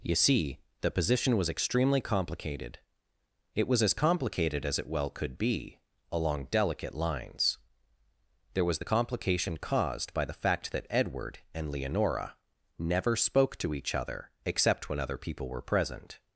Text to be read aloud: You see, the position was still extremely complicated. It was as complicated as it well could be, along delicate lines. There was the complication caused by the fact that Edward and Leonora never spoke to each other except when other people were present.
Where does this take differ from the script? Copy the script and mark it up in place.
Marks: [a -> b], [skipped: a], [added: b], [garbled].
You see, the position was [skipped: still] extremely complicated. It was as complicated as it well could be, along delicate lines. There was the complication caused by the fact that Edward and Leonora never spoke to each other except when other people were present.